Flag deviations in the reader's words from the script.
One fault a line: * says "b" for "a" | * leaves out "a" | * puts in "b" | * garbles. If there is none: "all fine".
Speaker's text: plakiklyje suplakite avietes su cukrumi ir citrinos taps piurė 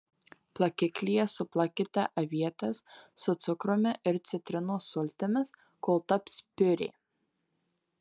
* puts in "sultimis kol"